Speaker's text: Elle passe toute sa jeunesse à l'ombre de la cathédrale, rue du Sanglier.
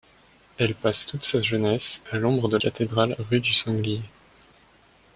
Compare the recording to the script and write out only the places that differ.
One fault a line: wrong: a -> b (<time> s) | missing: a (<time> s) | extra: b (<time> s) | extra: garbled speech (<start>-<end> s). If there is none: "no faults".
missing: la (2.6 s)